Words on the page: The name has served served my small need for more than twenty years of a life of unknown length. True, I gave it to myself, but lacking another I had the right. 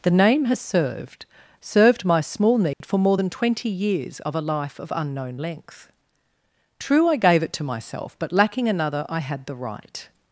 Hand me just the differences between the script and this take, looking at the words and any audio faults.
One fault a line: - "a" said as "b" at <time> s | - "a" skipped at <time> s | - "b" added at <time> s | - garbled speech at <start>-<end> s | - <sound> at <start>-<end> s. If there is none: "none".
- dropout at 2.7-2.8 s